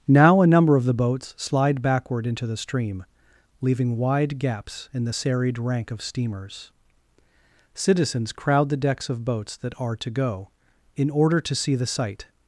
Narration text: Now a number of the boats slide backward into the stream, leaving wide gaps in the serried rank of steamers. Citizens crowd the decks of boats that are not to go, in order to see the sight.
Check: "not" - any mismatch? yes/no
yes